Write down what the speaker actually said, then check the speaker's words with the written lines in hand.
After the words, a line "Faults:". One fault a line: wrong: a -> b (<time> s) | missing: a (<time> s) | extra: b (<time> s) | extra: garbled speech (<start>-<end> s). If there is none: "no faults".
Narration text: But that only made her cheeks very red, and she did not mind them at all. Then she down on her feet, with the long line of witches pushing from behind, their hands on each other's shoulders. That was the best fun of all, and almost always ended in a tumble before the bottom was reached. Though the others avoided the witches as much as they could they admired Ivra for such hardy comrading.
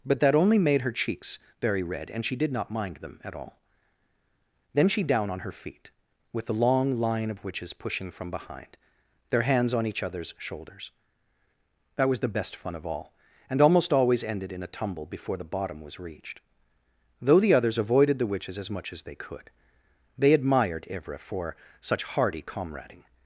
But that only made her cheeks very red, and she did not mind them at all. Then she down on her feet, with the long line of witches pushing from behind, their hands on each other's shoulders. That was the best fun of all, and almost always ended in a tumble before the bottom was reached. Though the others avoided the witches as much as they could they admired Ivra for such hardy comrading.
Faults:
no faults